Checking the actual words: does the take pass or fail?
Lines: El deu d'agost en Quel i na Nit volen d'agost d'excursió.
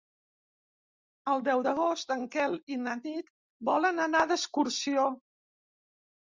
fail